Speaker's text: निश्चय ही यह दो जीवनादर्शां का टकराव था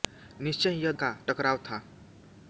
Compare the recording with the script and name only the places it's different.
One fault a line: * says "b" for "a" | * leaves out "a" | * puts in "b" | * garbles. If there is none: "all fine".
* leaves out "दो जीवनादर्शां"